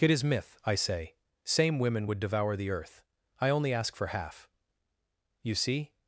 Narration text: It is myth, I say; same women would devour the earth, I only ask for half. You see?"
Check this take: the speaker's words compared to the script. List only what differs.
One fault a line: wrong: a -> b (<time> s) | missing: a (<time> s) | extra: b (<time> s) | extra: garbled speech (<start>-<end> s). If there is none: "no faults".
no faults